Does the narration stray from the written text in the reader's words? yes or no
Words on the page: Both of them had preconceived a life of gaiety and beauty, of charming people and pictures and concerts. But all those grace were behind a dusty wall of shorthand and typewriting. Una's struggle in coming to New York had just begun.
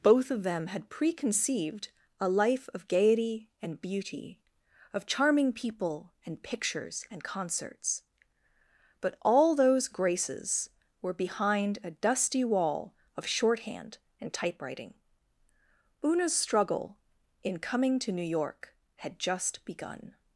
yes